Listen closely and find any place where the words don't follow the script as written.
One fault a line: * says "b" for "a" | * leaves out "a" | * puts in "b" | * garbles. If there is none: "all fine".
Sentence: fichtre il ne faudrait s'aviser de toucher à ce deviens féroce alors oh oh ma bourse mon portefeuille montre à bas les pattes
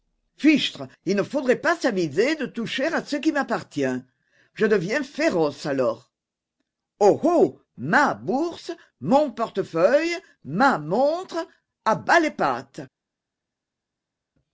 * puts in "pas"
* puts in "qui m'appartient je"
* puts in "ma"